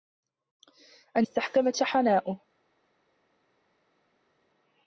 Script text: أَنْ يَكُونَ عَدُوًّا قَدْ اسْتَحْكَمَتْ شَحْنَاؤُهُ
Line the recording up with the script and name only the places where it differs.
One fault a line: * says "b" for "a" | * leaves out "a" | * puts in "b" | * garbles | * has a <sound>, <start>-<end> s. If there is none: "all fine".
* leaves out "يَكُونَ عَدُوًّا قَدْ"